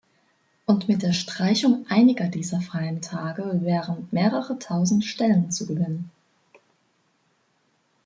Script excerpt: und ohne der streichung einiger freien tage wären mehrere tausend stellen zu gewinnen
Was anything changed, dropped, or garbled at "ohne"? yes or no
yes